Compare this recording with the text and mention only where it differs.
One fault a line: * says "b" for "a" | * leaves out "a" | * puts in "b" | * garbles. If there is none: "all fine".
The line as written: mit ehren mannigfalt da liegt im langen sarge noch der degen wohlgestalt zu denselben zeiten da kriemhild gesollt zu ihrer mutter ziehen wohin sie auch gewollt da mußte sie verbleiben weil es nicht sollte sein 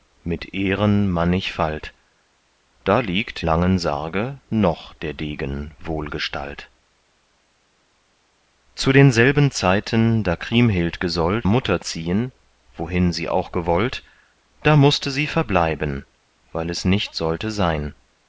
* leaves out "im"
* leaves out "zu ihrer"